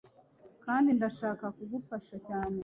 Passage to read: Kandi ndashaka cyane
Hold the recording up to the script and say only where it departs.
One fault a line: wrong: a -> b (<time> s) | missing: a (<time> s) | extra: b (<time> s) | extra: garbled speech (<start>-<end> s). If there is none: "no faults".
extra: kugufasha (1.5 s)